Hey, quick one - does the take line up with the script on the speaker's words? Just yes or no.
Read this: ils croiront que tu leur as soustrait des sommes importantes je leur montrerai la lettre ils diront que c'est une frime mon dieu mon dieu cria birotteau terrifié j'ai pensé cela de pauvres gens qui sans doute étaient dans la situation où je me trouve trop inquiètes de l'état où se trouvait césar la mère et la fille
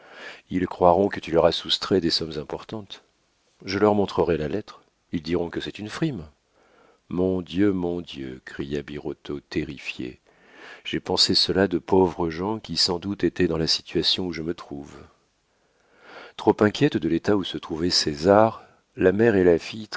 yes